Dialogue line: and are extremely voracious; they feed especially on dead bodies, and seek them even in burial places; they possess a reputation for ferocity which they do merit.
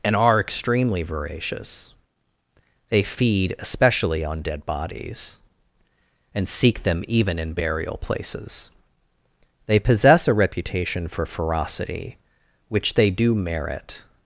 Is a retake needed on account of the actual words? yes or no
no